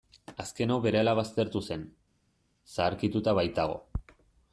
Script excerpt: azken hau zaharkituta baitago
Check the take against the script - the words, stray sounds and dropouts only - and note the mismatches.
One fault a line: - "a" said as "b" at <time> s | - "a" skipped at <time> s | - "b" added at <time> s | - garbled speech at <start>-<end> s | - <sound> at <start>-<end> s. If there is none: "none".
- "berehala baztertu zen" added at 0.8 s